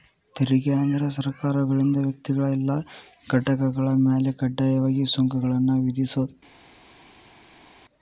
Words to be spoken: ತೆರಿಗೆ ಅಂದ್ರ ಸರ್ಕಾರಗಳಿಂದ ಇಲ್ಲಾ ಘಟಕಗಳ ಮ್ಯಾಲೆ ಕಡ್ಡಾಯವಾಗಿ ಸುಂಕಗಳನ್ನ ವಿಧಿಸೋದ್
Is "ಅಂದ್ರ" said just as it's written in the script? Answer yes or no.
yes